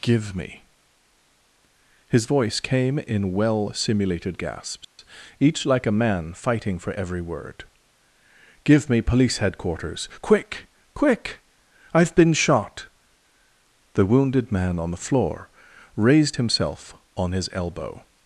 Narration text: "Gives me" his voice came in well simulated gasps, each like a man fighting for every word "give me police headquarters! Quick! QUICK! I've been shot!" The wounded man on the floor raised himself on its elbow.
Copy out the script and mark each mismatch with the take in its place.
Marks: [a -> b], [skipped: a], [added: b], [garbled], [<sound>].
["Gives -> Give] me" his voice came in well simulated gasps, [dropout] each like a man fighting for every word "give me police headquarters! Quick! QUICK! I've been shot!" The wounded man on the floor raised himself on [its -> his] elbow.